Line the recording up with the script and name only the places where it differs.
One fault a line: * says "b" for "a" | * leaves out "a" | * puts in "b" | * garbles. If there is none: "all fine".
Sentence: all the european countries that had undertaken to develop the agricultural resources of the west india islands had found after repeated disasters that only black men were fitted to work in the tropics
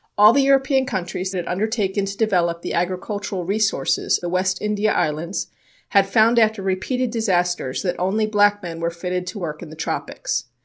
* leaves out "that"
* leaves out "of"